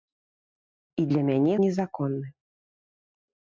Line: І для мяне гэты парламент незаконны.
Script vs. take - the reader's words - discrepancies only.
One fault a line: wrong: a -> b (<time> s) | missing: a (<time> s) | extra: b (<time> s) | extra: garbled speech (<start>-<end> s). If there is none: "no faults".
missing: гэты парламент (1.5 s)